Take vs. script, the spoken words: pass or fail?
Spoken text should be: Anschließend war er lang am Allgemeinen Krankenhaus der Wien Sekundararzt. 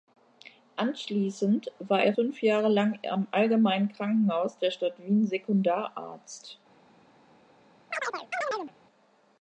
fail